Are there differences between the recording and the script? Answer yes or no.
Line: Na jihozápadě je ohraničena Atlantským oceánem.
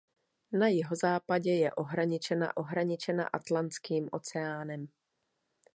yes